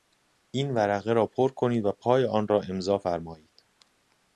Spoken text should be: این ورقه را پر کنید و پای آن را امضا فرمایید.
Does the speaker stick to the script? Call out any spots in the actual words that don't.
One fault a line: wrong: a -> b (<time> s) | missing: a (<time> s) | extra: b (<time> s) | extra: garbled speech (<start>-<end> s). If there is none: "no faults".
no faults